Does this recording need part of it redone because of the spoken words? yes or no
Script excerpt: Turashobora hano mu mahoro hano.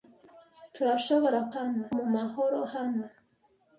no